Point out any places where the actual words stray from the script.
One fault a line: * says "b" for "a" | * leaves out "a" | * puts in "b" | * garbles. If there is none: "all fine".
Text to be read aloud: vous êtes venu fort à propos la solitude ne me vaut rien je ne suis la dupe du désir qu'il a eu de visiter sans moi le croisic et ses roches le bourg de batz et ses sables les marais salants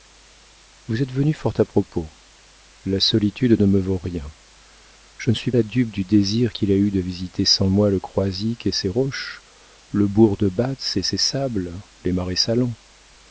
all fine